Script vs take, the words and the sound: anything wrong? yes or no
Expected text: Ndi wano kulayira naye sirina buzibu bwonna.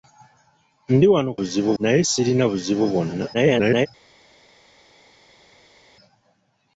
yes